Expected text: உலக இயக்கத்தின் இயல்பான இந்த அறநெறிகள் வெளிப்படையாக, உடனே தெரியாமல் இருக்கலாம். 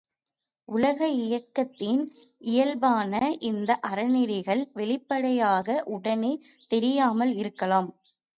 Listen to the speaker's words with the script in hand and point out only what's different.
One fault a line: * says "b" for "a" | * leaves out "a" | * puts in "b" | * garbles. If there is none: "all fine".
all fine